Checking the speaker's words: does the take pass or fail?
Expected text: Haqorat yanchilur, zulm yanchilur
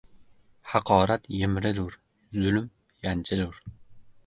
fail